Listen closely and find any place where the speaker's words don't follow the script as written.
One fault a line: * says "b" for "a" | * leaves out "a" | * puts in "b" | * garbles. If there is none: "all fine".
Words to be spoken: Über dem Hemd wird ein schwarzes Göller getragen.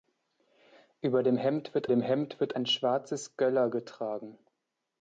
* puts in "dem Hemd wird"